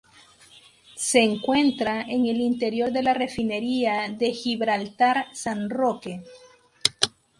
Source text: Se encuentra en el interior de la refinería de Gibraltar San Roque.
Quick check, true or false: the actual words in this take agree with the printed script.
true